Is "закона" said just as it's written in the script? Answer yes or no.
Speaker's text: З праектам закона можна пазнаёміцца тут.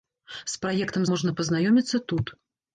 no